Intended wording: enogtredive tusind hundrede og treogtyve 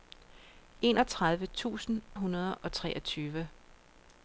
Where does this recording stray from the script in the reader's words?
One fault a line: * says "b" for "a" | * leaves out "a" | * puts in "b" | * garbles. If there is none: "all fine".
all fine